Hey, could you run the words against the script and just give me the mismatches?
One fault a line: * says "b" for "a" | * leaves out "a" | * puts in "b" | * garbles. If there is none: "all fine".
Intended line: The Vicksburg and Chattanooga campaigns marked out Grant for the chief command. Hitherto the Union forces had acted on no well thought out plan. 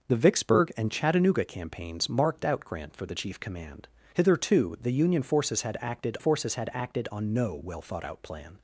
* puts in "forces had acted"